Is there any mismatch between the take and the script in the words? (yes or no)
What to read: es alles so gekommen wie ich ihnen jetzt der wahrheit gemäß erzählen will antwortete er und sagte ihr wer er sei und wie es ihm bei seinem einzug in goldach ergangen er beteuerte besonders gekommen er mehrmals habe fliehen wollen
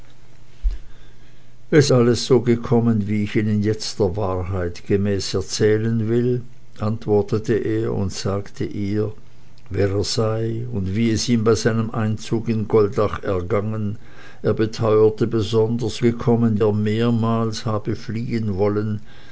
no